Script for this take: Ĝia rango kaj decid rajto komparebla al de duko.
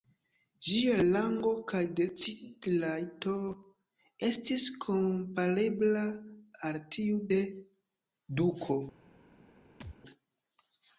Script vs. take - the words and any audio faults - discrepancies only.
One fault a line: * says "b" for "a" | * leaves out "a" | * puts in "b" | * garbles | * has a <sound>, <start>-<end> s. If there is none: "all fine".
* puts in "estis"
* puts in "tiu"
* has a thud, 9.8-10.0 s